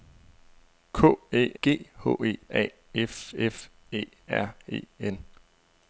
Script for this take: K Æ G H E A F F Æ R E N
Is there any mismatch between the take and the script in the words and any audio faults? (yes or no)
no